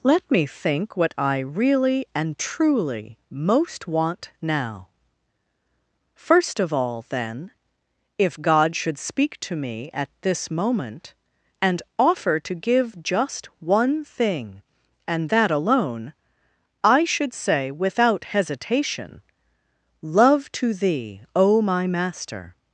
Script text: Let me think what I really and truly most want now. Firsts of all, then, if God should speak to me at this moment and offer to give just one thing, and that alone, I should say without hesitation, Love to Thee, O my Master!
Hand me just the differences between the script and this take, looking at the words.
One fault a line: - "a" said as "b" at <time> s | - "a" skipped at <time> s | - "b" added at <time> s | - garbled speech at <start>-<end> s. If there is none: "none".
- "Firsts" said as "First" at 6.1 s